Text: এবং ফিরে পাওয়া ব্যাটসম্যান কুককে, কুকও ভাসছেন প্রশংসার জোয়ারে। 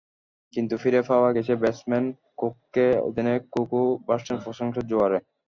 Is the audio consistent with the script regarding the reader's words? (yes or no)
no